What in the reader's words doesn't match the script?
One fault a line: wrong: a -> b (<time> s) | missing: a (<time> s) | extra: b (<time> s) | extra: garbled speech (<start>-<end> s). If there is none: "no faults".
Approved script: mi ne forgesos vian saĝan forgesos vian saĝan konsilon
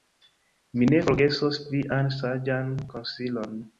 missing: forgesos vian saĝan (2.7 s)